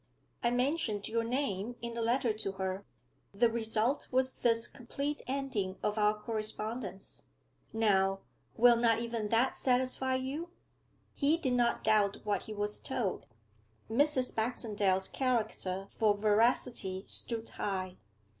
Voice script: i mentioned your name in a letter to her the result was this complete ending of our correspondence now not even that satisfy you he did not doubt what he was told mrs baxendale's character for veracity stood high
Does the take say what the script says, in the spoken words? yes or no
no